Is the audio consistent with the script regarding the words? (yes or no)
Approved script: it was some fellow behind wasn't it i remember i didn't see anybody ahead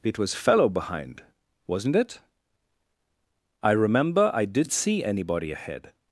no